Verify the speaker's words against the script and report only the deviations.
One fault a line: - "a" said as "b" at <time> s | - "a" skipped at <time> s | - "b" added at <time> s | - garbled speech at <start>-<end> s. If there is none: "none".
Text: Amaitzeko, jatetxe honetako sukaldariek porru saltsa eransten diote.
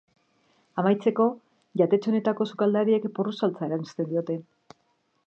none